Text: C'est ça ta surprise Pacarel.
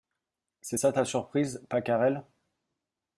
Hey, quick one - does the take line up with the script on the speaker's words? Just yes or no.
yes